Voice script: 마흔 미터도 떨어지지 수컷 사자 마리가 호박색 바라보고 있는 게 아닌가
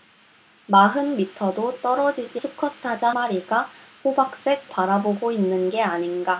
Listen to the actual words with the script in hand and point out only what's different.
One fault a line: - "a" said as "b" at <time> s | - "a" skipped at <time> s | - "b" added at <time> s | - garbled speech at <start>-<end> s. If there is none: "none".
none